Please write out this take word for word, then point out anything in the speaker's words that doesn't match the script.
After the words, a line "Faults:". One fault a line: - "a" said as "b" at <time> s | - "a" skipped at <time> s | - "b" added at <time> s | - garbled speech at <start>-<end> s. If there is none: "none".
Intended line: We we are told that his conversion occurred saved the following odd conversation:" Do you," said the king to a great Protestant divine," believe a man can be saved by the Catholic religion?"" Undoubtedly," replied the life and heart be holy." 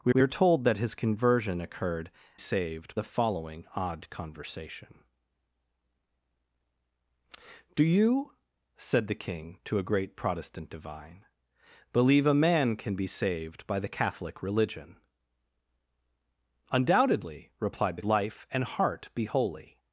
We we are told that his conversion occurred saved the following odd conversation:" Do you," said the king to a great Protestant divine," believe a man can be saved by the Catholic religion?"" Undoubtedly," replied the life and heart be holy."
Faults:
none